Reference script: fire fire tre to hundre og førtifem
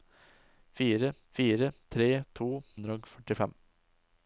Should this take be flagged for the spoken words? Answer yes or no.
no